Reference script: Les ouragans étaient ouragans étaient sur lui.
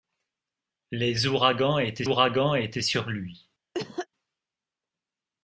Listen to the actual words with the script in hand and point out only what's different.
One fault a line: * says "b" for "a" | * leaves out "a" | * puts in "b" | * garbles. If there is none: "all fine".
all fine